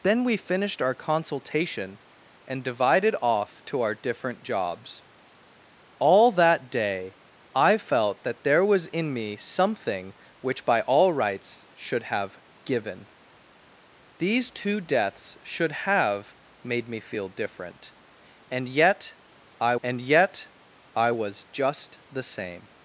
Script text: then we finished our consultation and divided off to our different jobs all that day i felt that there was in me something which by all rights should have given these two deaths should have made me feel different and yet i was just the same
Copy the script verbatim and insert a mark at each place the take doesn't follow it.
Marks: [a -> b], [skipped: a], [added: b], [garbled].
then we finished our consultation and divided off to our different jobs all that day i felt that there was in me something which by all rights should have given these two deaths should have made me feel different and yet i [added: and yet i] was just the same